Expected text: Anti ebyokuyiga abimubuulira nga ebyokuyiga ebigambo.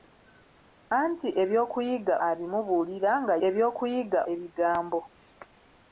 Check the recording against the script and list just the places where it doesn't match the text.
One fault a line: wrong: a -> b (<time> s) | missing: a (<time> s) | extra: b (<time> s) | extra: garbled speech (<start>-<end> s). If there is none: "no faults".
no faults